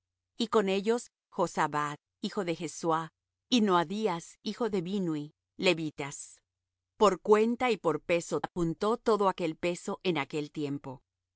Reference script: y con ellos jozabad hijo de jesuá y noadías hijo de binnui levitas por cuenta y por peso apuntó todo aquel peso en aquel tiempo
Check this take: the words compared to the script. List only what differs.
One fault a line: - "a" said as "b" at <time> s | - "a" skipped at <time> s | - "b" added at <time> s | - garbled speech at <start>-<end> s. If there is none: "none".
none